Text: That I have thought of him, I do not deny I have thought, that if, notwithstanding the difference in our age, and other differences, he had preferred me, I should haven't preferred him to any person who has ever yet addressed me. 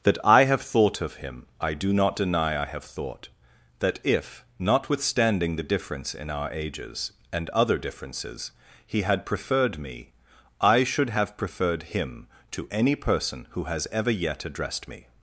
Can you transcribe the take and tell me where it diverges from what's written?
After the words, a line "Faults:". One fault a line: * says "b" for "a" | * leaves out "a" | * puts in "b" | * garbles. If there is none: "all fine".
That I have thought of him, I do not deny I have thought, that if, notwithstanding the difference in our ages, and other differences, he had preferred me, I should have preferred him to any person who has ever yet addressed me.
Faults:
* says "ages" for "age"
* says "have" for "haven't"